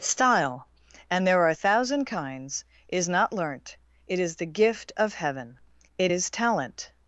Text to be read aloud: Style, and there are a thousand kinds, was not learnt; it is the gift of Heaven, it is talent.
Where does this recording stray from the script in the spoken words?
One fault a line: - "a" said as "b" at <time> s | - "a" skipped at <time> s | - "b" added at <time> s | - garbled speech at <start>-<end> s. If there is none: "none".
- "was" said as "is" at 2.9 s